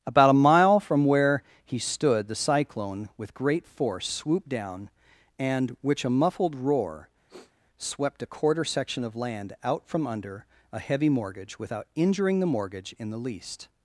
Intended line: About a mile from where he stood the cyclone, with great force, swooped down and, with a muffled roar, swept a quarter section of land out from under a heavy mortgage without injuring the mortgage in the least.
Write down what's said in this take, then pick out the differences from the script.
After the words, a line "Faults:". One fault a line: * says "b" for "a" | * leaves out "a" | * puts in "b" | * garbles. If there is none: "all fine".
About a mile from where he stood the cyclone, with great force, swooped down and, which a muffled roar, swept a quarter section of land out from under a heavy mortgage without injuring the mortgage in the least.
Faults:
* says "which" for "with"